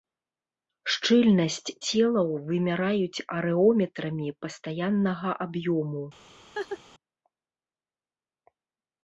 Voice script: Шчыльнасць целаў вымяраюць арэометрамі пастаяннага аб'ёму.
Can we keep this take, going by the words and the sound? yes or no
no